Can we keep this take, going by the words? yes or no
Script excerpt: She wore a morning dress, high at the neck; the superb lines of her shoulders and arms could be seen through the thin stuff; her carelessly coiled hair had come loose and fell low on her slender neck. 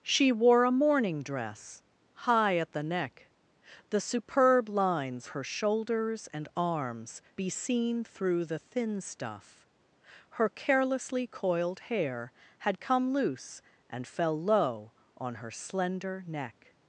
no